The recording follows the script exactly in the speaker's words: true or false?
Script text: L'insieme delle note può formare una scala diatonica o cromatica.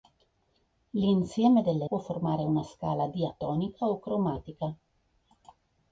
false